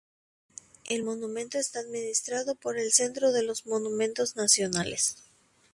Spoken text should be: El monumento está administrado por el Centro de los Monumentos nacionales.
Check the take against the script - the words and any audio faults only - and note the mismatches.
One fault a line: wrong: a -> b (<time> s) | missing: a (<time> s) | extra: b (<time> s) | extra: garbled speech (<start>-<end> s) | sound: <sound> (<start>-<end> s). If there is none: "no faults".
no faults